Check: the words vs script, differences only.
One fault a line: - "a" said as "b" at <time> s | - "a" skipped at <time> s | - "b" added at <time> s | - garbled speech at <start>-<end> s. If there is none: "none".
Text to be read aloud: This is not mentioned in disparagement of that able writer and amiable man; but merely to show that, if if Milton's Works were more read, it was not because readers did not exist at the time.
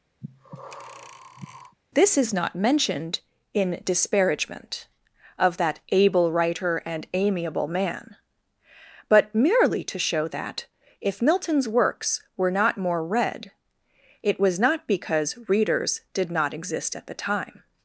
- "if" skipped at 11.2 s
- "not" added at 12.5 s